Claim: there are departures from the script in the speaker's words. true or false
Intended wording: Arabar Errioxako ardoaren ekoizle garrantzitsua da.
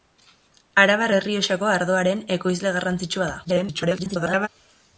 true